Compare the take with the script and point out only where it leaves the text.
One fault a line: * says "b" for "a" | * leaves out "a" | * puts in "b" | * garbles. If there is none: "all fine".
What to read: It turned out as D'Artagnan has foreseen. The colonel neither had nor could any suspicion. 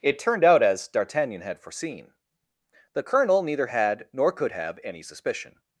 * says "had" for "has"
* puts in "have"